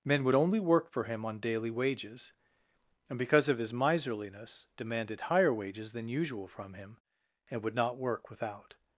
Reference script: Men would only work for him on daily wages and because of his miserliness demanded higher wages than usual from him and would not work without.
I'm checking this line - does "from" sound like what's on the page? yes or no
yes